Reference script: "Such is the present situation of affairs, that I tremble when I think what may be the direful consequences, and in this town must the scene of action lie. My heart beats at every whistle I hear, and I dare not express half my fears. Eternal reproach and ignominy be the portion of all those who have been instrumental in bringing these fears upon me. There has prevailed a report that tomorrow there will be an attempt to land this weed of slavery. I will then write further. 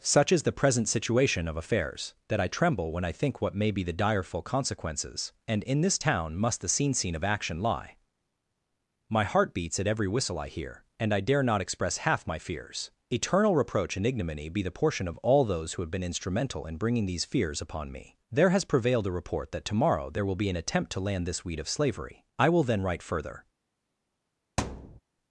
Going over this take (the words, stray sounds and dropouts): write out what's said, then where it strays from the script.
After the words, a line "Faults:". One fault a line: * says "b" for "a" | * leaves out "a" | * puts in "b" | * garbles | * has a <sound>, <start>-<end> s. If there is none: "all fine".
"Such is the present situation of affairs, that I tremble when I think what may be the direful consequences, and in this town must the scene scene of action lie. My heart beats at every whistle I hear, and I dare not express half my fears. Eternal reproach and ignominy be the portion of all those who have been instrumental in bringing these fears upon me. There has prevailed a report that tomorrow there will be an attempt to land this weed of slavery. I will then write further.
Faults:
* puts in "scene"
* has a thud, 24.6-25.0 s